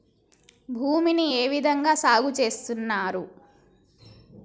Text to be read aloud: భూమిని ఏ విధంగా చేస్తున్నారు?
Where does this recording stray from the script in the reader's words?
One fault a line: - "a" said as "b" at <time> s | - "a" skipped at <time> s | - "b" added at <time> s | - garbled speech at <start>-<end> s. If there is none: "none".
- "సాగు" added at 1.9 s